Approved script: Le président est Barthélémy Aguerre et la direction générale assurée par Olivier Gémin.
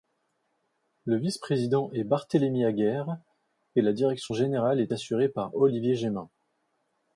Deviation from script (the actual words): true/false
true